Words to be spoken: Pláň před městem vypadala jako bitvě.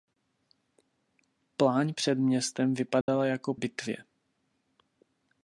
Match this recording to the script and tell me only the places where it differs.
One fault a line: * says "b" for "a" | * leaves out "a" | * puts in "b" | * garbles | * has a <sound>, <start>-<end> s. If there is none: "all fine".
* has a dropout, 3.0-3.1 s